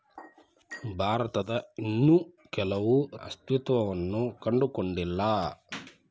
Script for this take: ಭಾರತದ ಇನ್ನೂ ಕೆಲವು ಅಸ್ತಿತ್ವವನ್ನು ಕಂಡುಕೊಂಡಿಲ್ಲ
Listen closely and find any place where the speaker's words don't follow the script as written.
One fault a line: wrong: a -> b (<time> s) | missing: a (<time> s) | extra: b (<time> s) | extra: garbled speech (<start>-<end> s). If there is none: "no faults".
no faults